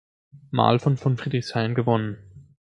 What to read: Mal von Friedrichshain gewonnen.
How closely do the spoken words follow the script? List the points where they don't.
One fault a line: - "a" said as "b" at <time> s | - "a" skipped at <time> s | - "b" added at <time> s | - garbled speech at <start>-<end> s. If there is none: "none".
- "von" added at 1.0 s